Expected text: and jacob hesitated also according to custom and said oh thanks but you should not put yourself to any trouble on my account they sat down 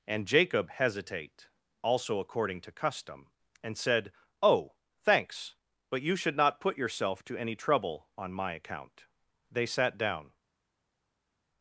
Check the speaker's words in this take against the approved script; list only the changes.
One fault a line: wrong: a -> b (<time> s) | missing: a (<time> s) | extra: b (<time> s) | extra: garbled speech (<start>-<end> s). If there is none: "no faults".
wrong: hesitated -> hesitate (0.7 s)